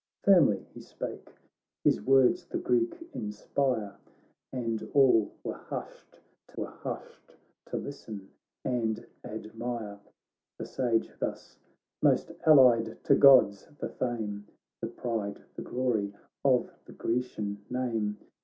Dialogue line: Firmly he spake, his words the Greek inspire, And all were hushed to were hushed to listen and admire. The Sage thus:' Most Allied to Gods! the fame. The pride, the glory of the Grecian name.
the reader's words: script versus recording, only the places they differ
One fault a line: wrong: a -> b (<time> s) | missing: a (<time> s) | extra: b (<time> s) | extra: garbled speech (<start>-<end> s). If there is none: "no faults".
no faults